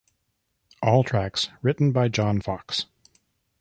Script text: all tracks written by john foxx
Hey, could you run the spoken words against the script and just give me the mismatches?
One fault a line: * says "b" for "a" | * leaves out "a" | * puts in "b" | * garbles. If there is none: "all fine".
all fine